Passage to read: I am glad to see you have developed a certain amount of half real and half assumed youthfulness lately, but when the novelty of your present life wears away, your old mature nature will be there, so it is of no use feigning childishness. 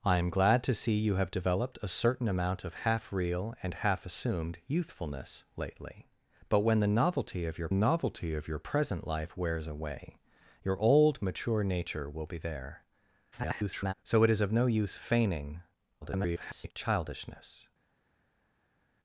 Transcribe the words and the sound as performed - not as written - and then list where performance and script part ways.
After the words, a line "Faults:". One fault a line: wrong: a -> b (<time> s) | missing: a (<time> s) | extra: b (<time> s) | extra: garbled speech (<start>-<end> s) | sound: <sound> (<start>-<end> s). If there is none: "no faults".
I am glad to see you have developed a certain amount of half real and half assumed youthfulness lately, but when the novelty of your novelty of your present life wears away, your old mature nature will be there, [garbled] so it is of no use feigning [garbled] childishness.
Faults:
extra: novelty of your (7.7 s)
extra: garbled speech (13.3-13.9 s)
extra: garbled speech (16.0-16.7 s)